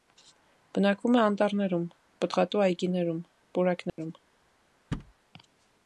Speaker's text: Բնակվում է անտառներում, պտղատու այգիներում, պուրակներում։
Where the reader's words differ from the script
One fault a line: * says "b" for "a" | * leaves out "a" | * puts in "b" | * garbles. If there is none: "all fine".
all fine